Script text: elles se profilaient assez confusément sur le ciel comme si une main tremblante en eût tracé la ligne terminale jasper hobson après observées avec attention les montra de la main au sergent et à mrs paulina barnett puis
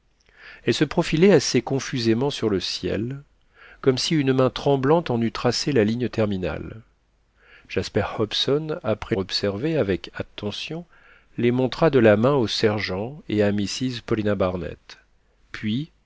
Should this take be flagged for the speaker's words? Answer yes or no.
no